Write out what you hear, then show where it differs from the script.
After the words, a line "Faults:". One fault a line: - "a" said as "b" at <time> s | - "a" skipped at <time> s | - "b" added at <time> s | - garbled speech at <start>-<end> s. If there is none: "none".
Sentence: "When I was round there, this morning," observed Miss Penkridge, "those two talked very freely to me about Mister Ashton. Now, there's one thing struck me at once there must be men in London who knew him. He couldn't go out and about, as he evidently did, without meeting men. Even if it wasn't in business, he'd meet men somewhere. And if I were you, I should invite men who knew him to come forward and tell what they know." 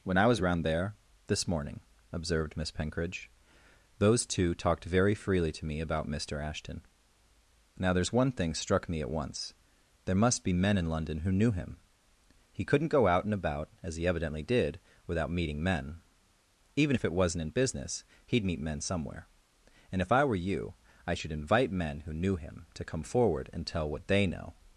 "When I was round there, this morning," observed Miss Penkridge, "those two talked very freely to me about Mister Ashton. Now, there's one thing struck me at once there must be men in London who knew him. He couldn't go out and about, as he evidently did, without meeting men. Even if it wasn't in business, he'd meet men somewhere. And if I were you, I should invite men who knew him to come forward and tell what they know."
Faults:
none